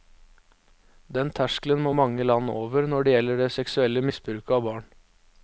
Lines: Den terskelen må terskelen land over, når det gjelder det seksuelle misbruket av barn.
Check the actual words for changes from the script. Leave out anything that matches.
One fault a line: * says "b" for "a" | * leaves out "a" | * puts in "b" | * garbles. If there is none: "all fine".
* says "mange" for "terskelen"